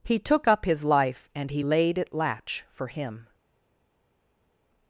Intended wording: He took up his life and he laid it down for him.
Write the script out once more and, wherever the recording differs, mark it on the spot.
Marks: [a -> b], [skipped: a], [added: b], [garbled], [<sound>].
He took up his life and he laid it [down -> latch] for him.